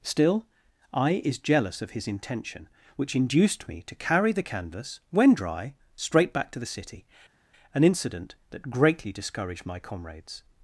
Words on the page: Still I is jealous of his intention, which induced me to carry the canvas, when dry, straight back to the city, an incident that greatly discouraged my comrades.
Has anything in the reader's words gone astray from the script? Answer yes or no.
no